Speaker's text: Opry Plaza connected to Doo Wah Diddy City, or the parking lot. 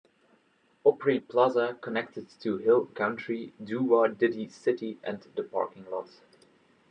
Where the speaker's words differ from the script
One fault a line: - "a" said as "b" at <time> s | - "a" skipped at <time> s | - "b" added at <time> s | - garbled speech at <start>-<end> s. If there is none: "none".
- "Hill Country" added at 2.6 s
- "or" said as "and" at 5.0 s